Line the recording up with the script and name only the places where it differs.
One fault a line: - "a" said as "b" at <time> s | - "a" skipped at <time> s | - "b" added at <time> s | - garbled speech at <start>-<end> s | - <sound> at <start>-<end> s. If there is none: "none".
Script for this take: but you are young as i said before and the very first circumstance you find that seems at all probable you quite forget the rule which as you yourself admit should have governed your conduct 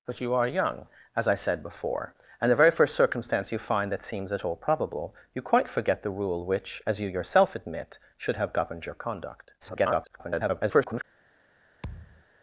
- garbled speech at 9.6-11.0 s
- thud at 11.8-12.2 s